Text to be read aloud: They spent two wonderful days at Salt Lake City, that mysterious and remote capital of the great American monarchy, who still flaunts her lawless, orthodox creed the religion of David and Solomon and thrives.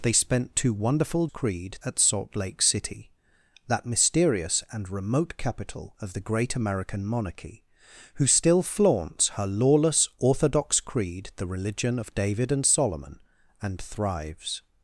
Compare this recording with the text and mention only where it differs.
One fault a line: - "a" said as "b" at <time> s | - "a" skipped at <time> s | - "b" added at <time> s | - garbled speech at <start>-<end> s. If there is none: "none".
- "days" said as "creed" at 1.3 s